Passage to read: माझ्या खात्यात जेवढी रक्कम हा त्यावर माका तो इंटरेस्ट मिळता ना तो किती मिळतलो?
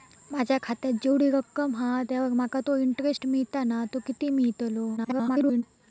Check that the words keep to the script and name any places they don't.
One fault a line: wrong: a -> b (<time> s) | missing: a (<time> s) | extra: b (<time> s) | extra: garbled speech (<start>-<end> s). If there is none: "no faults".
extra: garbled speech (5.0-5.6 s)